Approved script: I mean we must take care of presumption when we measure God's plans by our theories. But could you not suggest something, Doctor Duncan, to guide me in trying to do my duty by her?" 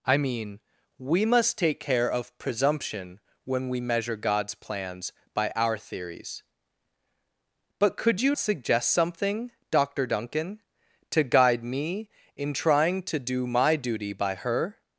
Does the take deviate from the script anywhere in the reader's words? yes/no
yes